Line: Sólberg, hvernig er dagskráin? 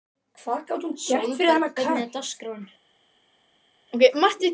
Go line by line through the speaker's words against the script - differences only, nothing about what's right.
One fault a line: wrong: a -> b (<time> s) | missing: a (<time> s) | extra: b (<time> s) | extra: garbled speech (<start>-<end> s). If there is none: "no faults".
no faults